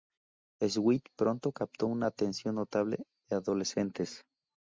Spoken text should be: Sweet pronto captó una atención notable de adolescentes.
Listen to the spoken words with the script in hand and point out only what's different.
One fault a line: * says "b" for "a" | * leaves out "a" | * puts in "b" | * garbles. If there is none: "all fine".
all fine